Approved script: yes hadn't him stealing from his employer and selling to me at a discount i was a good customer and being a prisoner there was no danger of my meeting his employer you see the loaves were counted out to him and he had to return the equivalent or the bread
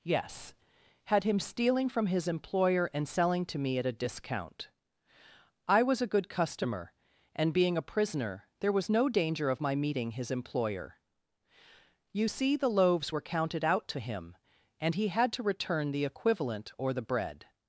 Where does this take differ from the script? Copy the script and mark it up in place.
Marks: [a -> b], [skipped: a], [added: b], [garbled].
yes [hadn't -> had] him stealing from his employer and selling to me at a discount i was a good customer and being a prisoner there was no danger of my meeting his employer you see the loaves were counted out to him and he had to return the equivalent or the bread